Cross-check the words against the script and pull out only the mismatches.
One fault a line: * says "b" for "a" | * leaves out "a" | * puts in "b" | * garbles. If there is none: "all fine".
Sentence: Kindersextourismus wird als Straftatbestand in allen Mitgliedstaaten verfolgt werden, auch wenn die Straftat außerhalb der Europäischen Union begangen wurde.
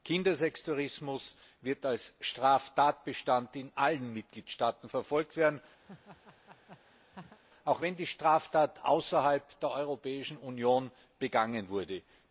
all fine